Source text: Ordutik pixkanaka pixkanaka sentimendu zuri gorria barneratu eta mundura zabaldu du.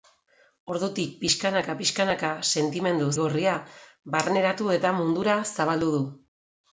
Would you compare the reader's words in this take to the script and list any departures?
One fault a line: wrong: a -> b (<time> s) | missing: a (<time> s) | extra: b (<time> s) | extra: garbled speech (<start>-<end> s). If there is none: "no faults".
missing: zuri (3.1 s)